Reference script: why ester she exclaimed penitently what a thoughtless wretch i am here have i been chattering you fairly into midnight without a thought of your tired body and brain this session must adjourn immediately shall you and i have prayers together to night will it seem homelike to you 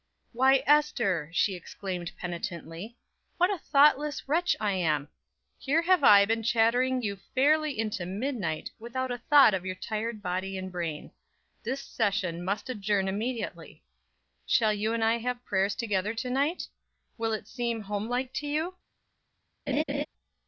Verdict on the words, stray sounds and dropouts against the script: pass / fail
fail